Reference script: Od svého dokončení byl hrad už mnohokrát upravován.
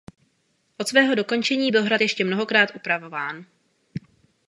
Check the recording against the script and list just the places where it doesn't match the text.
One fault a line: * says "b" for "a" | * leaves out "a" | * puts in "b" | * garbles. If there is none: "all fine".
* says "ještě" for "už"